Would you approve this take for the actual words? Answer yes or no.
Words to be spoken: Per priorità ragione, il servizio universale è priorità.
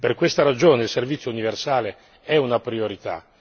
no